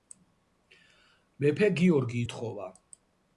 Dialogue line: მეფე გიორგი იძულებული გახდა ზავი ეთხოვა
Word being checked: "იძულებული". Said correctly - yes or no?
no